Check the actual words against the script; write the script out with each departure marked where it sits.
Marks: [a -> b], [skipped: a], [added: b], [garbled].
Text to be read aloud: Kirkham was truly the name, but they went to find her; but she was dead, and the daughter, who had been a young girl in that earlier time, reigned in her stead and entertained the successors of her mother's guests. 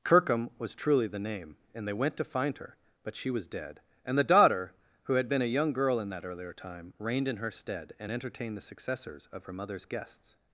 Kirkham was truly the name, [but -> and] they went to find her; but she was dead, and the daughter, who had been a young girl in that earlier time, reigned in her stead and entertained the successors of her mother's guests.